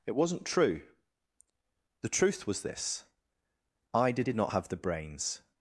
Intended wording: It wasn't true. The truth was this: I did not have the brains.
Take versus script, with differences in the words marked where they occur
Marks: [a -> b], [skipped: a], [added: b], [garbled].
It wasn't true. The truth was this: I did [added: did] not have the brains.